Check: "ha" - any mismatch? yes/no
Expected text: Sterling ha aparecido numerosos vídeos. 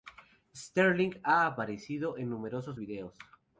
no